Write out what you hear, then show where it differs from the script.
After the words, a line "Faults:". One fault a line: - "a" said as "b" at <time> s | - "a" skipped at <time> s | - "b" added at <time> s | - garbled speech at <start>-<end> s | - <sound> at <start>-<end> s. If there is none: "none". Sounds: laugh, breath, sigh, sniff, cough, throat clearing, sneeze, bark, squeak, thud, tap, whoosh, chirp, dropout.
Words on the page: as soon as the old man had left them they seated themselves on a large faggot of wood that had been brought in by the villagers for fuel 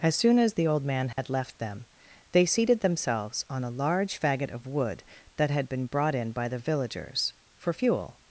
as soon as the old man had left them they seated themselves on a large faggot of wood that had been brought in by the villagers for fuel
Faults:
- dropout at 1.1-1.2 s